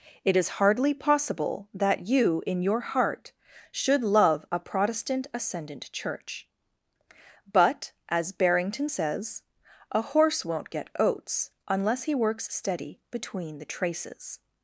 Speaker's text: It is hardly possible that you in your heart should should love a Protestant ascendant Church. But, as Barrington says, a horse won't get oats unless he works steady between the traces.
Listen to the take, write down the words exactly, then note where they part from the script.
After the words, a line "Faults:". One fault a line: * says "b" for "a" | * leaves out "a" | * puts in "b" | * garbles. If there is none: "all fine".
It is hardly possible that you in your heart should love a Protestant ascendant Church. But, as Barrington says, a horse won't get oats unless he works steady between the traces.
Faults:
* leaves out "should"